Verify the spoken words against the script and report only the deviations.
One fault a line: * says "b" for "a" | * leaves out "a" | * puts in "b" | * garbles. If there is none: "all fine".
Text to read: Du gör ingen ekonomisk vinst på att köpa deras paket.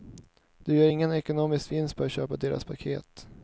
all fine